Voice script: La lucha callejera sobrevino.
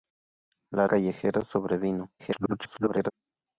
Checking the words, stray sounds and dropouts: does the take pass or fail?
fail